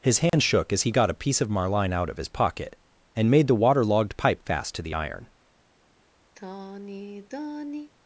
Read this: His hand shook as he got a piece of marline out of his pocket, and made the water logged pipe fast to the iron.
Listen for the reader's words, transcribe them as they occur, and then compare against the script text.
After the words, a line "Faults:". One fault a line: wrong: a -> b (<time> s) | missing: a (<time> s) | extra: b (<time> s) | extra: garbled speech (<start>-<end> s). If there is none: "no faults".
His hand shook as he got a piece of marline out of his pocket, and made the water logged pipe fast to the iron.
Faults:
no faults